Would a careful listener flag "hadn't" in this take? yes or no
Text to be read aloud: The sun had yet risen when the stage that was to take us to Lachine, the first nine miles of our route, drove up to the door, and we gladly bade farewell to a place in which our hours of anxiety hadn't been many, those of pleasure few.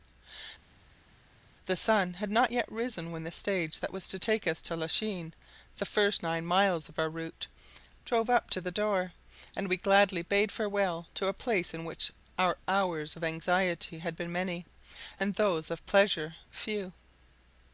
yes